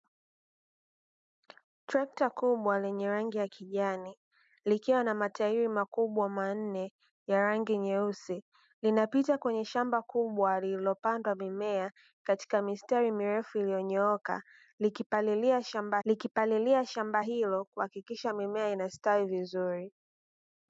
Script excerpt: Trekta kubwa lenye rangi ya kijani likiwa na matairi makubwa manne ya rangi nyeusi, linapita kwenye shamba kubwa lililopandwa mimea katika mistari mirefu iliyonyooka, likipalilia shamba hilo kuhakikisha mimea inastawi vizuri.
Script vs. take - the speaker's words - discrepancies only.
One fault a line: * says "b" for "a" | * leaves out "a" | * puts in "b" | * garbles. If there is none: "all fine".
* puts in "likipalilia shamba"